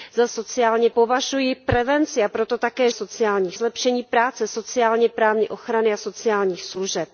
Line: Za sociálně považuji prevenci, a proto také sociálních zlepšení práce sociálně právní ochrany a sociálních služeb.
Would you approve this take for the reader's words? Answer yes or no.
yes